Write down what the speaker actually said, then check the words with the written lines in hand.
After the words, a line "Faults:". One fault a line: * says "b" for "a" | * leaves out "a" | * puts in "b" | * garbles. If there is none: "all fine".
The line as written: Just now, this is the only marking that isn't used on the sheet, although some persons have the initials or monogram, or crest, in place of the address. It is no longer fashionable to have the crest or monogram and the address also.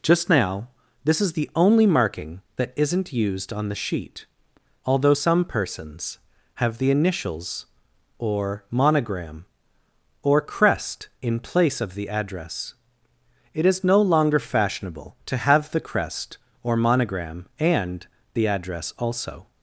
Just now, this is the only marking that isn't used on the sheet, although some persons have the initials or monogram, or crest, in place of the address. It is no longer fashionable to have the crest or monogram and the address also.
Faults:
all fine